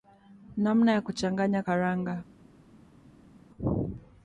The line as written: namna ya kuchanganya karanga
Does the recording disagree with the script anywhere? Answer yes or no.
no